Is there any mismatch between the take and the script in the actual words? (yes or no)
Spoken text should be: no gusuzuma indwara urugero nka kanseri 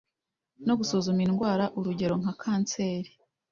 no